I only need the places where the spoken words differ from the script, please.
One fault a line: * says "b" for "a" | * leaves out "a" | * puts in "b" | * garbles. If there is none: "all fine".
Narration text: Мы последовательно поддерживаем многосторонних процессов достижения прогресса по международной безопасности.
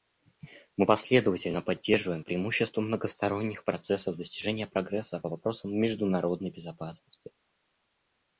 * puts in "преимущества"
* puts in "вопросам"